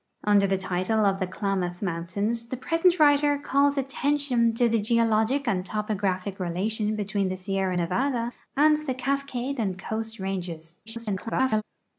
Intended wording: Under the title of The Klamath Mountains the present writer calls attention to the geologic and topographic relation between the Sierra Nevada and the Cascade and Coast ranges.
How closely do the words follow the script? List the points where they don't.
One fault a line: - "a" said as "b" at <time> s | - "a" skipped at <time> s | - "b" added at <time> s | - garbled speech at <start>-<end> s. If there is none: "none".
- garbled speech at 10.9-11.6 s